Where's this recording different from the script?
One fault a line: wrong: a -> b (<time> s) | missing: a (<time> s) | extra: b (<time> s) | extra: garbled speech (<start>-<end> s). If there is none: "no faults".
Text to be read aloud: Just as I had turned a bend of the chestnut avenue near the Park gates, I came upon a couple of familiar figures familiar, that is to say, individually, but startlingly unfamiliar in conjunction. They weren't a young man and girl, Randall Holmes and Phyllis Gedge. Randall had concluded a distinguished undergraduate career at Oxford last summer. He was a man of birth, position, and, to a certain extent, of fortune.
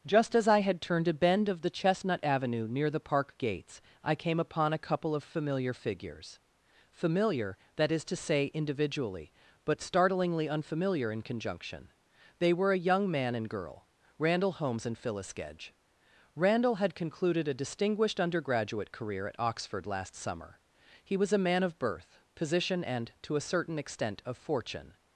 wrong: weren't -> were (12.5 s)